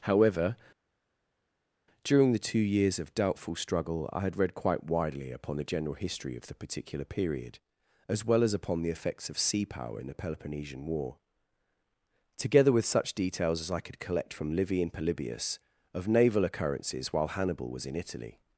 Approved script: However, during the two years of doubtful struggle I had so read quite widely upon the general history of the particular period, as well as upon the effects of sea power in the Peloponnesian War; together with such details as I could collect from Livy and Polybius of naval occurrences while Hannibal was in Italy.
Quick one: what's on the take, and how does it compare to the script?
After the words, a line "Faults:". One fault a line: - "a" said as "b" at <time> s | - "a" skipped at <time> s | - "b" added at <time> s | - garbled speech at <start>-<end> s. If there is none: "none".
However, during the two years of doubtful struggle I had read quite widely upon the general history of the particular period, as well as upon the effects of sea power in the Peloponnesian War; together with such details as I could collect from Livy and Polybius of naval occurrences while Hannibal was in Italy.
Faults:
- "so" skipped at 4.4 s